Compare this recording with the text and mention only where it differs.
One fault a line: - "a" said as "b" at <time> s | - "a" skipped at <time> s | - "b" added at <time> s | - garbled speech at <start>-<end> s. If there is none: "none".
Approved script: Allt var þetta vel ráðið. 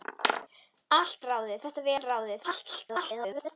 - "var" said as "ráðið" at 1.3 s
- garbled speech at 2.4-3.6 s